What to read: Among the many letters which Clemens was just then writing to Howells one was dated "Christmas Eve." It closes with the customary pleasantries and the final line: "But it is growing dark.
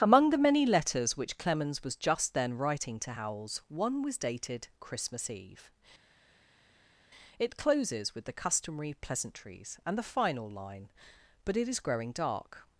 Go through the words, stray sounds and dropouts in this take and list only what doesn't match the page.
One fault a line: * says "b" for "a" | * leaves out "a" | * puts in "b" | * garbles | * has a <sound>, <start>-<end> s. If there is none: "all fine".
all fine